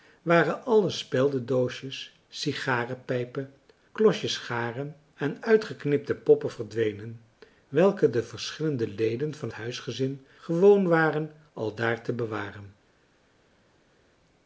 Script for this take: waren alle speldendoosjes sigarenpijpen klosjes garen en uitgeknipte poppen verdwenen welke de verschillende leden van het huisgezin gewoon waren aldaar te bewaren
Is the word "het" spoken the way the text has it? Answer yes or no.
no